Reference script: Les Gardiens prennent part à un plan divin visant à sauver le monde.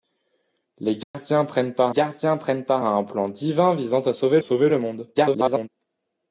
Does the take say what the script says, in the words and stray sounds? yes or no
no